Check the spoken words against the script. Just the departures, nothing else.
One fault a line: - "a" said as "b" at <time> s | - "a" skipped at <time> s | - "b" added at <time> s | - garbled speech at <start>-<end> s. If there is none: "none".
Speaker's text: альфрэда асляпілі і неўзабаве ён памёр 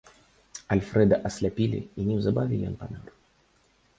none